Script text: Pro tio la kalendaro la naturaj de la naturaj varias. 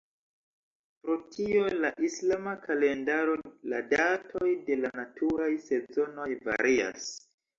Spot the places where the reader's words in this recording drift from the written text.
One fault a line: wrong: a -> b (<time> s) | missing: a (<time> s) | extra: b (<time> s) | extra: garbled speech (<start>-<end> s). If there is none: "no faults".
extra: islama (2.1 s)
wrong: naturaj -> datoj (3.9 s)
extra: sezonoj (5.7 s)